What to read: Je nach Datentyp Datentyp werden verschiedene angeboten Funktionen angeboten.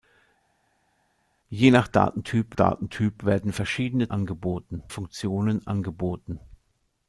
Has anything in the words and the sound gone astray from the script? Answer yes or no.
no